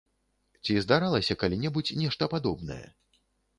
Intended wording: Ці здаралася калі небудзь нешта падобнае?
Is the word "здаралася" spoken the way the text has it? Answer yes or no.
yes